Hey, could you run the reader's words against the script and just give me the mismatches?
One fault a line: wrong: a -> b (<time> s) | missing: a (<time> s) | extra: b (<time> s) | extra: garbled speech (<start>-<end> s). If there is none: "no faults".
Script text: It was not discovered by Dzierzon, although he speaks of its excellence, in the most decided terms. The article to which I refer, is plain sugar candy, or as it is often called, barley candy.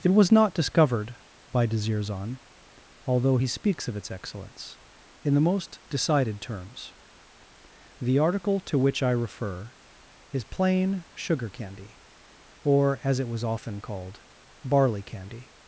wrong: is -> was (13.3 s)